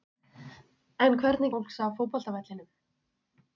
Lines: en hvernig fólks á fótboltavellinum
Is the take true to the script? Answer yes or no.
yes